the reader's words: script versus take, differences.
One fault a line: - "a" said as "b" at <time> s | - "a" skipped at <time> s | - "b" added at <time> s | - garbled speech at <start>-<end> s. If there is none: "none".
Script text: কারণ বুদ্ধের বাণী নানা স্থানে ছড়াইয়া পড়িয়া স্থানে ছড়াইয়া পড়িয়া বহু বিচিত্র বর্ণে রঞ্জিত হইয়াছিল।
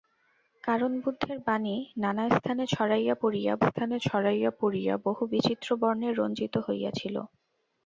none